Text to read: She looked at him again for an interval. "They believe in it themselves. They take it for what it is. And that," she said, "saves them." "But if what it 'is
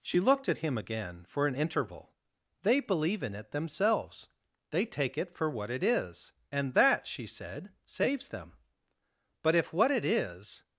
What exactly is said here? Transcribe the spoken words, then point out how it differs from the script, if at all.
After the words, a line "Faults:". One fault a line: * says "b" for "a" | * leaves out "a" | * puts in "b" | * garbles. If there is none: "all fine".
She looked at him again for an interval. "They believe in it themselves. They take it for what it is. And that," she said, "saves them." "But if what it 'is
Faults:
all fine